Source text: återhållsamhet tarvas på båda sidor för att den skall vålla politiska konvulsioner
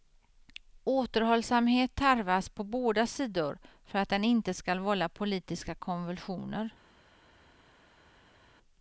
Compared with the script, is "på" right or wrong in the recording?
right